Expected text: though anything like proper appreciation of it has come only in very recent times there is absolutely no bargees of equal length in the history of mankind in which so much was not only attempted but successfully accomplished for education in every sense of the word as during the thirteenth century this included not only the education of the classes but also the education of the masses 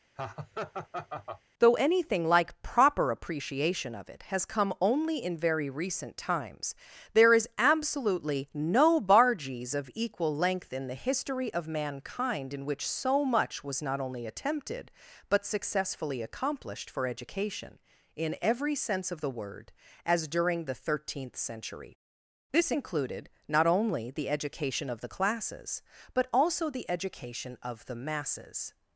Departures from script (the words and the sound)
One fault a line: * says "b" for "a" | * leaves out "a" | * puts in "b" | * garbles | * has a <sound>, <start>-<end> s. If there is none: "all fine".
* has a laugh, 0.2-1.4 s